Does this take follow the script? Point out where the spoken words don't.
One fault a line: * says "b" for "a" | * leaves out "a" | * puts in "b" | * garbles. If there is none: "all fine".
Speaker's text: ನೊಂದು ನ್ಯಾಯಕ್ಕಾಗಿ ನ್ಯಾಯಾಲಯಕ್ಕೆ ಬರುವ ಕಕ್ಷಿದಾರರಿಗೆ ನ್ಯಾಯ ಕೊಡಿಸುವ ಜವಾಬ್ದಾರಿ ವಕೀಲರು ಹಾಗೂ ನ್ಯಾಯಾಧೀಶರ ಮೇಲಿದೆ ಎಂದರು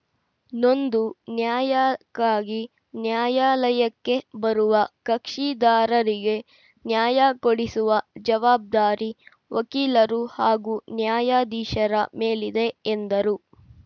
all fine